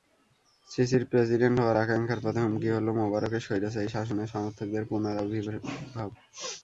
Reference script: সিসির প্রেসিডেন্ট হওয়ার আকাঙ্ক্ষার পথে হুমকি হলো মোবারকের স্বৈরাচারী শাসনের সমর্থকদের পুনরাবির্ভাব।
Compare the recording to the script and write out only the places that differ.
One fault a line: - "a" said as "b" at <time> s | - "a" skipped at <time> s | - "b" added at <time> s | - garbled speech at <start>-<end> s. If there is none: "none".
none